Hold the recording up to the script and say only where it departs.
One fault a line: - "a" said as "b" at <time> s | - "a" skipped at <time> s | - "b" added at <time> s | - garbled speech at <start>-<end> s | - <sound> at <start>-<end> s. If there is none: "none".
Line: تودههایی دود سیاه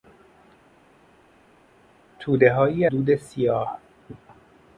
none